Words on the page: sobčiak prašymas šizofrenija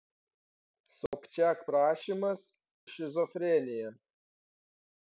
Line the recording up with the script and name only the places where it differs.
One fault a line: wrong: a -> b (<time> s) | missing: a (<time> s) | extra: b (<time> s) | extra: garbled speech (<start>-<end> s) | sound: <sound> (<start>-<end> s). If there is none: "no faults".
sound: dropout (1.1-1.1 s)